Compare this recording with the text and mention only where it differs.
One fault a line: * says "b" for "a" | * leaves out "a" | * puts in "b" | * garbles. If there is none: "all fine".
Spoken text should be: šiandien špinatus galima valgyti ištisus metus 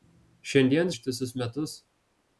* leaves out "špinatus galima valgyti"